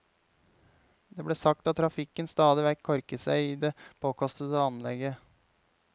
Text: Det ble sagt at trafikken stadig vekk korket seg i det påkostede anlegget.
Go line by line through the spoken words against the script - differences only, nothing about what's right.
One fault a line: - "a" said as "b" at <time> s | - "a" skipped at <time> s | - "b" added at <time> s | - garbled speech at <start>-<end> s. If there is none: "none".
none